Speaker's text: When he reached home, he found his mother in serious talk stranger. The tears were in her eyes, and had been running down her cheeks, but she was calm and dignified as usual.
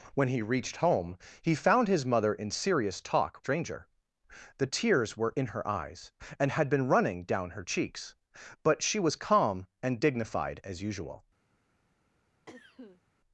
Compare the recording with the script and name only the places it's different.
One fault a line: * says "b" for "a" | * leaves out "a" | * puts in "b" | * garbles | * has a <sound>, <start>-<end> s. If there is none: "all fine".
* has a cough, 12.5-13.0 s